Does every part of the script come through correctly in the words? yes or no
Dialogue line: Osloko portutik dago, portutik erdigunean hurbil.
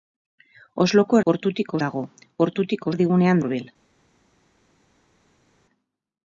yes